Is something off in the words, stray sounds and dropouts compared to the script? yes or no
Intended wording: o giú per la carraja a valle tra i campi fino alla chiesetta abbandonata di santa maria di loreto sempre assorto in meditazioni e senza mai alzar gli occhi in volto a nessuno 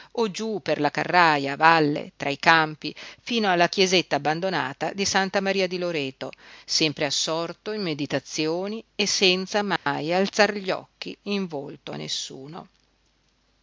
yes